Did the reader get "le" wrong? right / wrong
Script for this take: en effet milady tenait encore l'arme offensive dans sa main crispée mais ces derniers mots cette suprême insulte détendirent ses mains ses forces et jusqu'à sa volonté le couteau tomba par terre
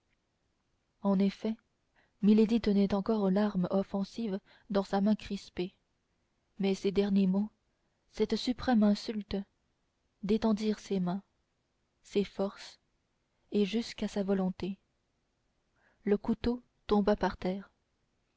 right